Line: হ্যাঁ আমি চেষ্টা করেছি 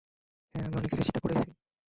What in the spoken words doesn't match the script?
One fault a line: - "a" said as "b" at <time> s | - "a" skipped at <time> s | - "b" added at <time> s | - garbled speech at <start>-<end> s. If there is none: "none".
- "অনেক" added at 0.8 s